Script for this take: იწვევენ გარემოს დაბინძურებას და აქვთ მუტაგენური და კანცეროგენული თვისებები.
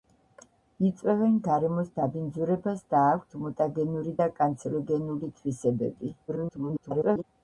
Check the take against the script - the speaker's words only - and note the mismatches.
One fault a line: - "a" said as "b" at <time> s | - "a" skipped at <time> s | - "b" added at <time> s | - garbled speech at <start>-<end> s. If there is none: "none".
- garbled speech at 6.3-7.2 s